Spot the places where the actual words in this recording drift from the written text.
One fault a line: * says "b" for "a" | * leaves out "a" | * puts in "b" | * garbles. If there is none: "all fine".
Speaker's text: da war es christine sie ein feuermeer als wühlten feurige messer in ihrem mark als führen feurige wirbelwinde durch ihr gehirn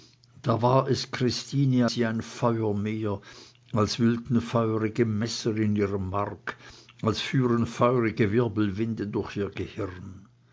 all fine